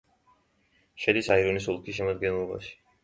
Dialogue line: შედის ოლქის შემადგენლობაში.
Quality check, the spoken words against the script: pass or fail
fail